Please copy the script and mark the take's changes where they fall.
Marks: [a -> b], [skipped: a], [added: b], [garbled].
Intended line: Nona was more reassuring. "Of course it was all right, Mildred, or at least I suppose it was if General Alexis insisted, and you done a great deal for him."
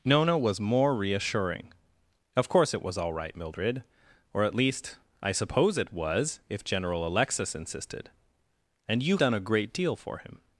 Nona was more reassuring. "Of course it was all right, Mildred, or at least I suppose it was if General Alexis insisted, and you done a great deal for him."